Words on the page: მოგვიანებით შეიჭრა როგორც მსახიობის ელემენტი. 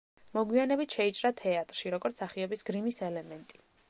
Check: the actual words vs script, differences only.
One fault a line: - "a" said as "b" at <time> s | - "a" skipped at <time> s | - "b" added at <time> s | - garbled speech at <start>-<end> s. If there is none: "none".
- "თეატრში" added at 1.4 s
- "გრიმის" added at 2.7 s